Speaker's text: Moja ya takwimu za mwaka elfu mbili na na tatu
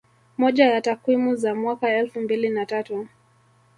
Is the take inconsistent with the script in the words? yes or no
yes